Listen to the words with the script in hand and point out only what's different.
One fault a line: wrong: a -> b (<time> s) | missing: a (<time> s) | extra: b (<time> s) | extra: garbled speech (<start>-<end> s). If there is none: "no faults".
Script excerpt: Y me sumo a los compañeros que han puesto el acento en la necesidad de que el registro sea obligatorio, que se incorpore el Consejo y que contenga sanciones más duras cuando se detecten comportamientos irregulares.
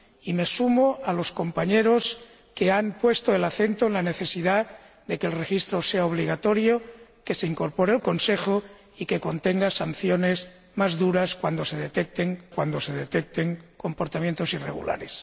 extra: cuando se detecten (12.5 s)